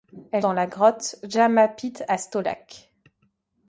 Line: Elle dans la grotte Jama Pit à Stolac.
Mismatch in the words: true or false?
false